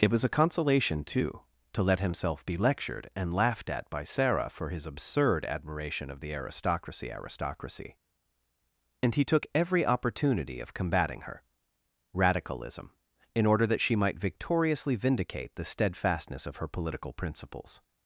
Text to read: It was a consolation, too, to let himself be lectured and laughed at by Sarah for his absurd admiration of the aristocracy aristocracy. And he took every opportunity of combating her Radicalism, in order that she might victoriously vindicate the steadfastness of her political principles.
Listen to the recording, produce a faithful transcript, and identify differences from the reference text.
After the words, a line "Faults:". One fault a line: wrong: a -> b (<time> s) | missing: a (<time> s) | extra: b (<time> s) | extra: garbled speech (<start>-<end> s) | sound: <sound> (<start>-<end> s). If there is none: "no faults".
It was a consolation, too, to let himself be lectured and laughed at by Sarah for his absurd admiration of the aristocracy aristocracy. And he took every opportunity of combating her Radicalism, in order that she might victoriously vindicate the steadfastness of her political principles.
Faults:
no faults